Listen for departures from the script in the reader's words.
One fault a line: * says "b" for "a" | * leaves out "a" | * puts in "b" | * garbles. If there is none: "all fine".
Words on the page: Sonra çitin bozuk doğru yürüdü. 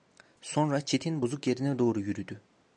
* puts in "yerine"